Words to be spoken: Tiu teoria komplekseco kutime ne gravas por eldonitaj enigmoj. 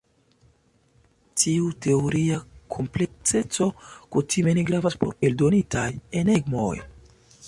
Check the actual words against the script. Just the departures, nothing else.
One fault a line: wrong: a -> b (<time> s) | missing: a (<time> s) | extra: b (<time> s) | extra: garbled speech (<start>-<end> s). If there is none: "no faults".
no faults